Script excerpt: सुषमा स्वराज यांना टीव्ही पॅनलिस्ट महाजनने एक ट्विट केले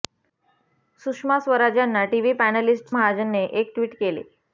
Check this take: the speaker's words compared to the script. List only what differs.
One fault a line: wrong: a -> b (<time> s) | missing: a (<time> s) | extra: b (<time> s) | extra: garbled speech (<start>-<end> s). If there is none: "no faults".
no faults